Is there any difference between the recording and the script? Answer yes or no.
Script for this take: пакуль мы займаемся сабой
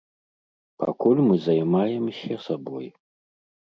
no